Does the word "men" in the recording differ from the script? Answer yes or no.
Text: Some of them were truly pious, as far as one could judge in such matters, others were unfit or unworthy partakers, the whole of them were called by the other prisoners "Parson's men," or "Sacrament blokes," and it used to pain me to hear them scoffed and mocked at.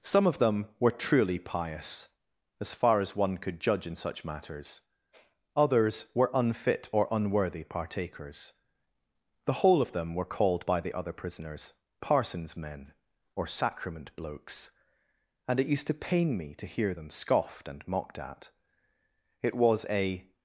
no